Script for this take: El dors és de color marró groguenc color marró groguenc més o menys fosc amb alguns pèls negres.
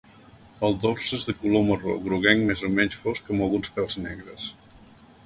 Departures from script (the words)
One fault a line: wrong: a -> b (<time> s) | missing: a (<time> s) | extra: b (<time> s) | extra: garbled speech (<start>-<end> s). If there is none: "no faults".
missing: color marró groguenc (2.4 s)